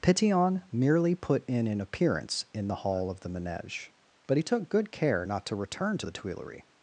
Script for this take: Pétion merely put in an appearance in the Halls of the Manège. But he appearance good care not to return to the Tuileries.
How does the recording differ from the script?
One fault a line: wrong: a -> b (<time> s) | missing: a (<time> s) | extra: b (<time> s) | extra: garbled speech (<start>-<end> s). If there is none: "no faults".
wrong: Halls -> Hall (2.8 s)
wrong: appearance -> took (4.4 s)